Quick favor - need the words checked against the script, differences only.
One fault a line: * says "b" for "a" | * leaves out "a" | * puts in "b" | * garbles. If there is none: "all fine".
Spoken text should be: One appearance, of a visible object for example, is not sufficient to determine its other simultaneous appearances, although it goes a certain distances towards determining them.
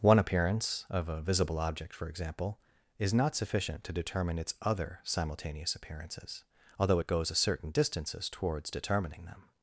all fine